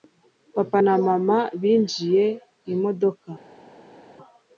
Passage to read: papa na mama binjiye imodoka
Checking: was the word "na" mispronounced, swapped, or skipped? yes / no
no